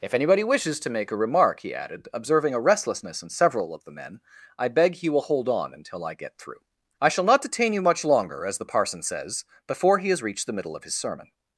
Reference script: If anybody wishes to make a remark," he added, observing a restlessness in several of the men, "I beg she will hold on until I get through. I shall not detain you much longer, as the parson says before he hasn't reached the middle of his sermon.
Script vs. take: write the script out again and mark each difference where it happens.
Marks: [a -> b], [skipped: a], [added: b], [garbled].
If anybody wishes to make a remark," he added, observing a restlessness in several of the men, "I beg [she -> he] will hold on until I get through. I shall not detain you much longer, as the parson says before he [hasn't -> has] reached the middle of his sermon.